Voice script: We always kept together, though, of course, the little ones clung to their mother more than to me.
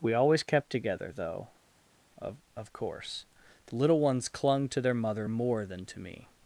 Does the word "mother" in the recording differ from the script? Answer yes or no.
no